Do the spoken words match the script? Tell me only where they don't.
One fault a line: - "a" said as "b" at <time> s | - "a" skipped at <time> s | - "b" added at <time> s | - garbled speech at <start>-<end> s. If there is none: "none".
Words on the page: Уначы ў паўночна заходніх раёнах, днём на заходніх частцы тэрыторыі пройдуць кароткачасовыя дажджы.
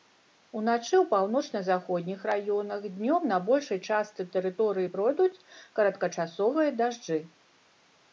- "заходніх" said as "большай" at 3.5 s